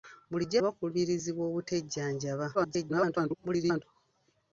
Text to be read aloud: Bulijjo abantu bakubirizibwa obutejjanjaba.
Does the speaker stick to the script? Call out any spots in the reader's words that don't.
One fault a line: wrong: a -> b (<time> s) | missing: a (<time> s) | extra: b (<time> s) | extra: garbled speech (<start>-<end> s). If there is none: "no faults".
missing: abantu (0.6 s)
extra: garbled speech (2.5-3.8 s)